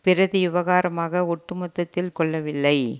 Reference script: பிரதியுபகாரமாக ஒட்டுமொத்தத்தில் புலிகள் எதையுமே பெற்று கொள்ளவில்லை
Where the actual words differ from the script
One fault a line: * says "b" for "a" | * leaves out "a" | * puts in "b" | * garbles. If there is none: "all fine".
* leaves out "புலிகள் எதையுமே பெற்று"